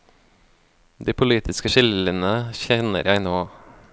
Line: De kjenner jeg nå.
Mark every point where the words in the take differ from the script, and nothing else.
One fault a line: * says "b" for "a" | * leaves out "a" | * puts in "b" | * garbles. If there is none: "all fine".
* puts in "politiske skillelinjene"